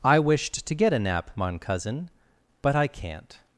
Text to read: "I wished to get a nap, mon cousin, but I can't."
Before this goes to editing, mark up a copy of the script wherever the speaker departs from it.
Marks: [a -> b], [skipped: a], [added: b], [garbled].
"I wished to get a nap, mon cousin, but I can't."